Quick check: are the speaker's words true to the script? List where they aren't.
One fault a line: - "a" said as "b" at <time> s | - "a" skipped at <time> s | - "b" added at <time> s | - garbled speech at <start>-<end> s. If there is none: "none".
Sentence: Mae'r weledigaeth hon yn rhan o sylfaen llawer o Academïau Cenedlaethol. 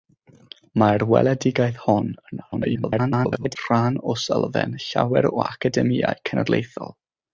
- garbled speech at 2.5-3.6 s